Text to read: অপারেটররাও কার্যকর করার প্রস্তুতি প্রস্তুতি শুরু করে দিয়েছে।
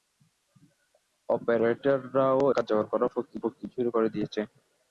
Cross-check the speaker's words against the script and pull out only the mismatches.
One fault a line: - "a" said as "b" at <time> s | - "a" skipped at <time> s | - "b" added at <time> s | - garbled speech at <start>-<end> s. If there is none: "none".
none